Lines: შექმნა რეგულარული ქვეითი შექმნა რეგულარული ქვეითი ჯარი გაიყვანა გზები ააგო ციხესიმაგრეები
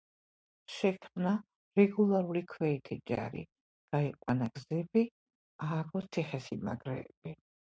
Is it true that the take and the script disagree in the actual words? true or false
true